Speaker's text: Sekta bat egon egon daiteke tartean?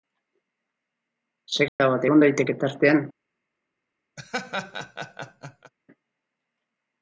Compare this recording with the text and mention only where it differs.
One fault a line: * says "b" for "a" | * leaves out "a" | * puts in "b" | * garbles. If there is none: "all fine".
* leaves out "egon"